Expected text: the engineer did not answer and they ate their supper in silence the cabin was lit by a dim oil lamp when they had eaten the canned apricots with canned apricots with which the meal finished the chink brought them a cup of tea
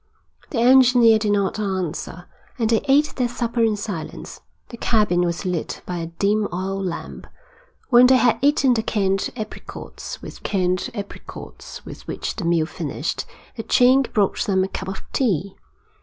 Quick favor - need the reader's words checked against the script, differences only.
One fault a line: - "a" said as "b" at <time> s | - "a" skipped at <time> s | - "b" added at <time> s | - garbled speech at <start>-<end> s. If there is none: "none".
none